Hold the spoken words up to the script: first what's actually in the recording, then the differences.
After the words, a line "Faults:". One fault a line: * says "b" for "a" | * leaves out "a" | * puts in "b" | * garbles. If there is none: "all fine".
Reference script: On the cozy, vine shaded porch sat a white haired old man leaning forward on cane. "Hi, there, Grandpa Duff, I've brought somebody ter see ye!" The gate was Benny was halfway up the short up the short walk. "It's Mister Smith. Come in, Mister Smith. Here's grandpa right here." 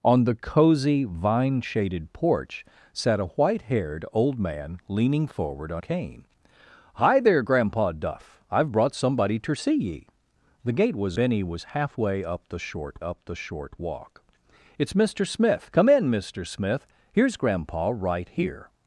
On the cozy, vine shaded porch sat a white haired old man leaning forward on cane. "Hi, there, Grandpa Duff, I've brought somebody ter see ye!" The gate was Benny was halfway up the short up the short walk. "It's Mister Smith. Come in, Mister Smith. Here's grandpa right here."
Faults:
all fine